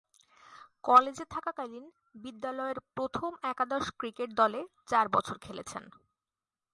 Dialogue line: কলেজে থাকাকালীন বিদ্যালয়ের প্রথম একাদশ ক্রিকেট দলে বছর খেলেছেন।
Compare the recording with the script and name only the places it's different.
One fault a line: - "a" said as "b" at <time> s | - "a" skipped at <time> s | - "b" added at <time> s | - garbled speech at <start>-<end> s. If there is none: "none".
- "চার" added at 4.9 s